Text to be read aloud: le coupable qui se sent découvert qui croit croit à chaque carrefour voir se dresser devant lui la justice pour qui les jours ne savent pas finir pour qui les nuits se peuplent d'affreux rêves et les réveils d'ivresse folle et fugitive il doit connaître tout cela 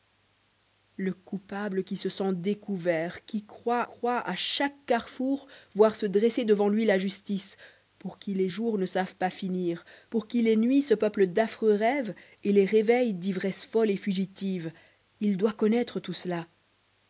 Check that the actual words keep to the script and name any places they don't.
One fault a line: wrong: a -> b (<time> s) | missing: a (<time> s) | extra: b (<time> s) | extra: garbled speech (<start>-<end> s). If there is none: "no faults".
no faults